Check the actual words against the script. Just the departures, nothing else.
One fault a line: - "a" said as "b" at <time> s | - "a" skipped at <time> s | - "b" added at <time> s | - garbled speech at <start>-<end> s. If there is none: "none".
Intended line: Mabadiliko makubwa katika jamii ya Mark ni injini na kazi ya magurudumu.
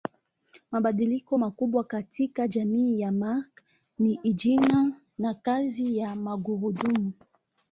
none